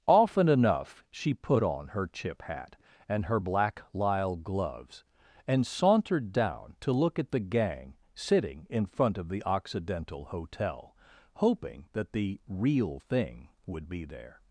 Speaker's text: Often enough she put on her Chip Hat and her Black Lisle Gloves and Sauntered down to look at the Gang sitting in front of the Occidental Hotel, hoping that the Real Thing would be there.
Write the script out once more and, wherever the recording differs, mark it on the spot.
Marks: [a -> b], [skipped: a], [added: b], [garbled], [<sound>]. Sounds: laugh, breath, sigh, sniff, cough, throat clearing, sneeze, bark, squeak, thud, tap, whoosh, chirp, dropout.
Often enough she put on her Chip Hat and her Black Lisle Gloves and Sauntered down to look at the Gang sitting in front of the Occidental Hotel, hoping that the Real Thing would be there.